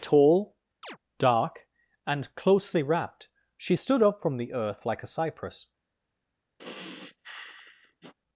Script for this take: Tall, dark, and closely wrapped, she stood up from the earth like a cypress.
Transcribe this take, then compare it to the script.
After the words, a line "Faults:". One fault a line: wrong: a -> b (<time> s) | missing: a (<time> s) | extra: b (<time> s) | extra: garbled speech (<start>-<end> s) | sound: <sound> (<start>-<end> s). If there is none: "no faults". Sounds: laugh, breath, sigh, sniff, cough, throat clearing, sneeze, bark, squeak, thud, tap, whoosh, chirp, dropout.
Tall, dark, and closely wrapped, she stood up from the earth like a cypress.
Faults:
sound: chirp (0.8-1.0 s)
sound: sigh (6.6-8.1 s)